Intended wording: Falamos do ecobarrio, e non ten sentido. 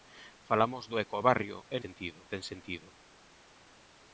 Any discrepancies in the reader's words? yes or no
yes